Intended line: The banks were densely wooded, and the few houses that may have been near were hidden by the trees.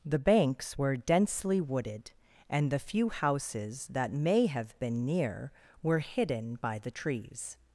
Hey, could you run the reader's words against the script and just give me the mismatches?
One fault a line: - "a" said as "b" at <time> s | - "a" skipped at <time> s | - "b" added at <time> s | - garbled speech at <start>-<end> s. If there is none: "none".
none